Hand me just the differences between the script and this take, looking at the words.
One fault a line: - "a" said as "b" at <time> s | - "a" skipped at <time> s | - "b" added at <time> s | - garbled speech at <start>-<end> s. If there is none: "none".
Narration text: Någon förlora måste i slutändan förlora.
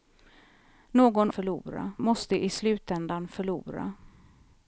none